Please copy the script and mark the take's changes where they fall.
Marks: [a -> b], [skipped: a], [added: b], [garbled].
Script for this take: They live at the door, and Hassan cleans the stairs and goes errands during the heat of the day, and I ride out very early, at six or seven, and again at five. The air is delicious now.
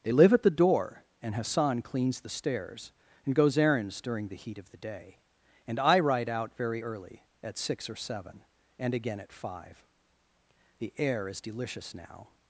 They live at the door, and Hassan cleans the stairs and goes errands during the heat of the day, and I ride out very early, at six or seven, and again at five. The air is delicious now.